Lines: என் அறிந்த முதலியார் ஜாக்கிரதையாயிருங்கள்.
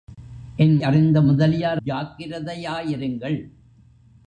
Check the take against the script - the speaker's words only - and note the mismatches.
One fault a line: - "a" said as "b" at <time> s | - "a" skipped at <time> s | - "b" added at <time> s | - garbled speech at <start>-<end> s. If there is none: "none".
none